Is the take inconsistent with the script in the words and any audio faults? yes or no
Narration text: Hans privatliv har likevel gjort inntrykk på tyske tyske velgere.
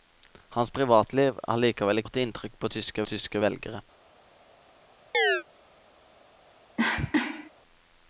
yes